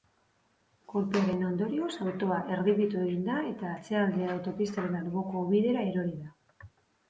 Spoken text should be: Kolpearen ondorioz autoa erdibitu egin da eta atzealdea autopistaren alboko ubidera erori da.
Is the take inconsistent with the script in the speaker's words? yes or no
no